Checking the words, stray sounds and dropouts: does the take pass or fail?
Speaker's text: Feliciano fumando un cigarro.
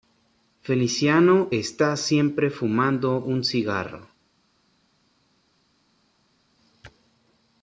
fail